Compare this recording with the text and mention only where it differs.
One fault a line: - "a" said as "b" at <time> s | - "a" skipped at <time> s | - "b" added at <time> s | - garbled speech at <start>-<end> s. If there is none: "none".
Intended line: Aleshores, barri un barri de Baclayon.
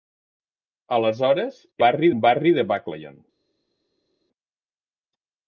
none